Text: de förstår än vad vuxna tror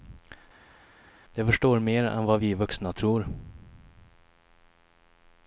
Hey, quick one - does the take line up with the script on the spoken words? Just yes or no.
no